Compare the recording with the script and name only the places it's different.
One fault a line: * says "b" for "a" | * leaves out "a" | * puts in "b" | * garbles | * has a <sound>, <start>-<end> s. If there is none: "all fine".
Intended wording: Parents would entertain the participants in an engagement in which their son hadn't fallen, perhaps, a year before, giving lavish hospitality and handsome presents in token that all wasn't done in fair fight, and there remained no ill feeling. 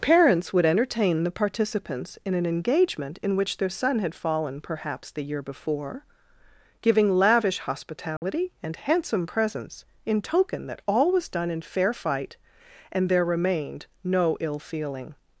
* says "had" for "hadn't"
* says "the" for "a"
* has a dropout, 8.2-8.2 s
* says "was" for "wasn't"